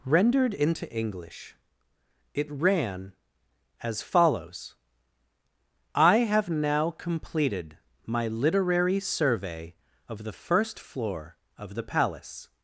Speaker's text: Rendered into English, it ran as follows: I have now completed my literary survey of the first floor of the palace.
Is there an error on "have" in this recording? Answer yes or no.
no